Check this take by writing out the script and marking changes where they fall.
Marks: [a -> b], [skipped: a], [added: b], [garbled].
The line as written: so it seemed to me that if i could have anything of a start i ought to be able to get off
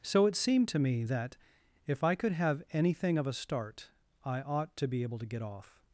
so it seemed to me that if i could have anything of a start i ought to be able to get off